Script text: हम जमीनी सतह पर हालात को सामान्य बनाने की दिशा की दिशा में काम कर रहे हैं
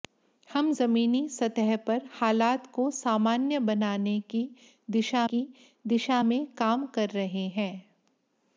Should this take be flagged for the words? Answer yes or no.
no